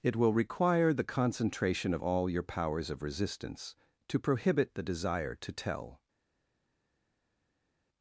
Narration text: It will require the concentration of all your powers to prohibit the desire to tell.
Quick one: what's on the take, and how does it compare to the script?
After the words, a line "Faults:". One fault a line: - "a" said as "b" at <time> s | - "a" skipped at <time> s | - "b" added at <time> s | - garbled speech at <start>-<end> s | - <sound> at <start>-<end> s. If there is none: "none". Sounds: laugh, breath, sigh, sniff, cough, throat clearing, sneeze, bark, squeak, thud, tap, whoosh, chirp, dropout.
It will require the concentration of all your powers of resistance to prohibit the desire to tell.
Faults:
- "of resistance" added at 2.9 s